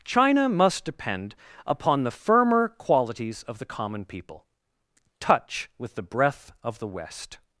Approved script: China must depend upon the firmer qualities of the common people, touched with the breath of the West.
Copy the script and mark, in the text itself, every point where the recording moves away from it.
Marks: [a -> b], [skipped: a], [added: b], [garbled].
China must depend upon the firmer qualities of the common people, [touched -> touch] with the breath of the West.